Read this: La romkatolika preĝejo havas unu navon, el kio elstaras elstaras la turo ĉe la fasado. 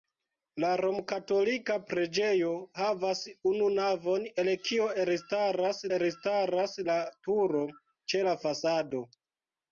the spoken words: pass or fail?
pass